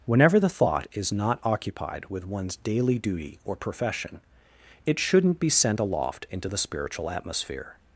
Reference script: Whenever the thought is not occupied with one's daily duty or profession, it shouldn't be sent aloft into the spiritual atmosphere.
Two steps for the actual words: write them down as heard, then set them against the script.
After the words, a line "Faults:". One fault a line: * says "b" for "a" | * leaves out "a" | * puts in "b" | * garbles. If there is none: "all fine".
Whenever the thought is not occupied with one's daily duty or profession, it shouldn't be sent aloft into the spiritual atmosphere.
Faults:
all fine